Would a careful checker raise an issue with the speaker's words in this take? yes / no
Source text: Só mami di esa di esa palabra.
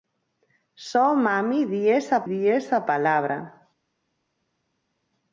no